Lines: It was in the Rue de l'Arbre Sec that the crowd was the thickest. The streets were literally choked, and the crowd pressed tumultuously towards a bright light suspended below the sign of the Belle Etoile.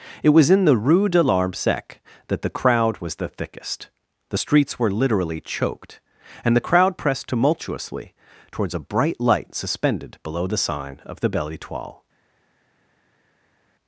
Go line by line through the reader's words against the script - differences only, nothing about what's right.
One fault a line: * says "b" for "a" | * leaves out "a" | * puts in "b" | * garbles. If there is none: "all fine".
all fine